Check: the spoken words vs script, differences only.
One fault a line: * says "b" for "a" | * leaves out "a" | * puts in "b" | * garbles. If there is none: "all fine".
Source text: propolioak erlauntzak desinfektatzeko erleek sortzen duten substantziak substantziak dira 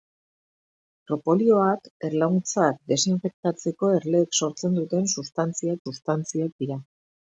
all fine